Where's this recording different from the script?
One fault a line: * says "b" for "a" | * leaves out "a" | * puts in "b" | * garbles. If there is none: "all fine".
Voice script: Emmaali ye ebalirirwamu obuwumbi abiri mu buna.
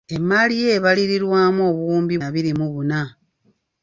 all fine